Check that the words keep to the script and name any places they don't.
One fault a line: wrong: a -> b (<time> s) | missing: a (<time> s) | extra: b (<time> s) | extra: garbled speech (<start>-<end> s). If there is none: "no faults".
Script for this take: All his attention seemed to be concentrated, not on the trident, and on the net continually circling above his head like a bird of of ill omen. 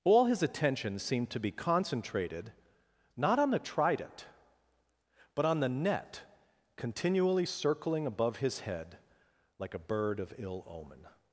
wrong: and -> but (5.3 s)
missing: of (10.3 s)